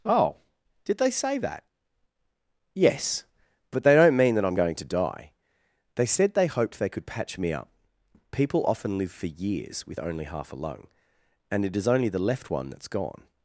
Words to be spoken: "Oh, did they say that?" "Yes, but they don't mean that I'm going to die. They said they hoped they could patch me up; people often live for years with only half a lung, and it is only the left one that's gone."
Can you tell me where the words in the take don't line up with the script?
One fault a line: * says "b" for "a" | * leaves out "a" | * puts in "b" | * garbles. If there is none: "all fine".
all fine